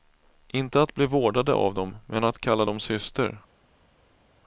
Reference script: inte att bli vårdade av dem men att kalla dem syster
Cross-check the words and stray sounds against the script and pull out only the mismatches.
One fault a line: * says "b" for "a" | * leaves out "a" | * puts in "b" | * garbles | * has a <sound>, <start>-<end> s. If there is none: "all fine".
all fine